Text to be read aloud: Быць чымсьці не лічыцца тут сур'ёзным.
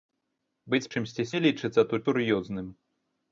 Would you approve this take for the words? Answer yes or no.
yes